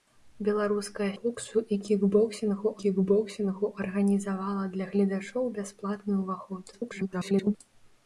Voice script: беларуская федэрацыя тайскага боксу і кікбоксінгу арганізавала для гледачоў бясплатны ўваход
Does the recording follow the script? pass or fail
fail